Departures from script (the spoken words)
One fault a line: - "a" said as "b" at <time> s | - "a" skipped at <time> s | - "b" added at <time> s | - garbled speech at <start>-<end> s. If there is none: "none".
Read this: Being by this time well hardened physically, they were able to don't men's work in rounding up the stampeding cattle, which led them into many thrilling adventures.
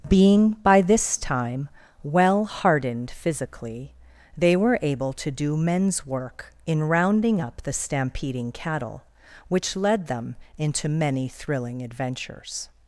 - "don't" said as "do" at 5.3 s